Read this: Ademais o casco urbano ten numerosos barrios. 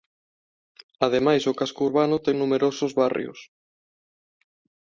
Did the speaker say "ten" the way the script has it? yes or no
yes